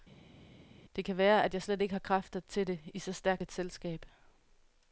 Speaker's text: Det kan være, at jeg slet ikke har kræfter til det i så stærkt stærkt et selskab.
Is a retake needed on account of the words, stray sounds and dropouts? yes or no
yes